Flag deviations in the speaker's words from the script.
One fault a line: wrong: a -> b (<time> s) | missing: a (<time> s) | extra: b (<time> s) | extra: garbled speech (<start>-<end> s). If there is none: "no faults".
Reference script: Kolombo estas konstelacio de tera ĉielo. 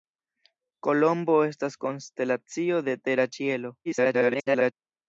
extra: garbled speech (3.8-4.7 s)